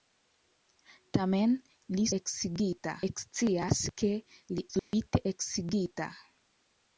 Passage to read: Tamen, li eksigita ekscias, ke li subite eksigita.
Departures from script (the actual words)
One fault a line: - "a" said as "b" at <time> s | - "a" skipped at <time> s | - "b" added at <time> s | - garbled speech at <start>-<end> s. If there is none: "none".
none